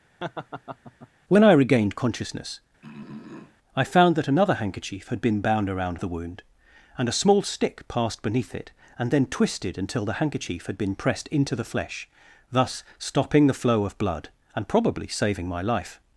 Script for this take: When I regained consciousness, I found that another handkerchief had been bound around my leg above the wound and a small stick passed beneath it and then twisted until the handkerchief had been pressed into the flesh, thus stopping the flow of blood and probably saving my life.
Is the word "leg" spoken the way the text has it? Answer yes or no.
no